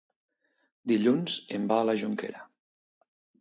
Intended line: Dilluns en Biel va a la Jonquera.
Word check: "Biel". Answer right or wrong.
wrong